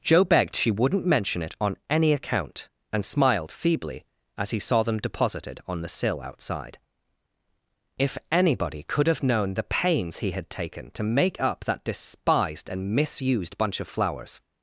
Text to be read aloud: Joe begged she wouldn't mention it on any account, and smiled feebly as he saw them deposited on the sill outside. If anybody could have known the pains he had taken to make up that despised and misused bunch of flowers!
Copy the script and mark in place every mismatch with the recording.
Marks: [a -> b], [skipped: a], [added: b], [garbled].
Joe begged she wouldn't mention it on any account, and smiled feebly as he saw them deposited on the sill outside. If anybody could have known the pains he had taken to make up that despised and misused bunch of flowers!